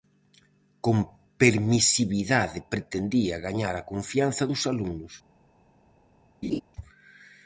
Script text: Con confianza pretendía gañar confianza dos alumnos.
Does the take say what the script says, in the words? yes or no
no